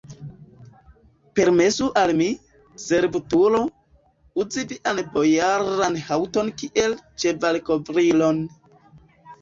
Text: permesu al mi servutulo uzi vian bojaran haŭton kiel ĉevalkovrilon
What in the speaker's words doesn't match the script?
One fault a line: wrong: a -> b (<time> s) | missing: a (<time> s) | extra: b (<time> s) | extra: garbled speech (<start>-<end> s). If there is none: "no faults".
no faults